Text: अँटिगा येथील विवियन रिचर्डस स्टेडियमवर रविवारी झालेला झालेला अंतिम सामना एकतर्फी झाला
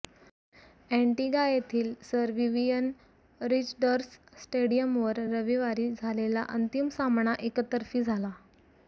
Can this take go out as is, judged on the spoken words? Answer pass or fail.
fail